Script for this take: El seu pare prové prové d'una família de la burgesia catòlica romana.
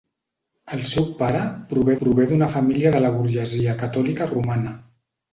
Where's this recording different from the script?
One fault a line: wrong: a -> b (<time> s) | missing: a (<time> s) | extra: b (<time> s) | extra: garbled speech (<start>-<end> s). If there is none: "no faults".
no faults